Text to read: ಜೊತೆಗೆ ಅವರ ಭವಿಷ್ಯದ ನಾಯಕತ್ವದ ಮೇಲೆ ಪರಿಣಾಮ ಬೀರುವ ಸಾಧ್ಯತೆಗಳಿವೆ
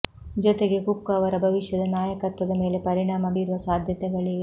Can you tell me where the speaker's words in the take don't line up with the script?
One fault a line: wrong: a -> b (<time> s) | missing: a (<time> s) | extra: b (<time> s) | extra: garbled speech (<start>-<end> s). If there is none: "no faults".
extra: ಕುಕ್ (0.8 s)